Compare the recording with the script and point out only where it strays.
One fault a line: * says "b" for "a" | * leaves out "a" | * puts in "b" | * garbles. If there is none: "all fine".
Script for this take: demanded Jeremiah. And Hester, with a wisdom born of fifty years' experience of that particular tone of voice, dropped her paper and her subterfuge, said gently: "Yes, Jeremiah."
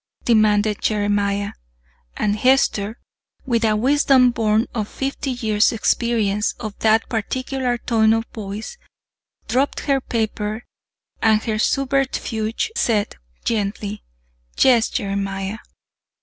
all fine